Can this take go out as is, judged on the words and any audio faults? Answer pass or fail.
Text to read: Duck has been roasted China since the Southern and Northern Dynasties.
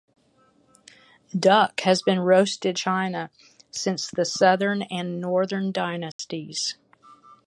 fail